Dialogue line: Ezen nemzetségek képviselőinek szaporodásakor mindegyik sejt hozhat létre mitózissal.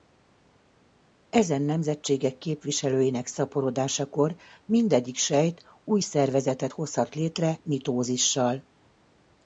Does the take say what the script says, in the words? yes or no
no